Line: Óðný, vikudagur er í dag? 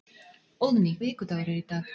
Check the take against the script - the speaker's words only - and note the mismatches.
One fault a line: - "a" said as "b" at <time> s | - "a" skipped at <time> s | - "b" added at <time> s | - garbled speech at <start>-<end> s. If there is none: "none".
none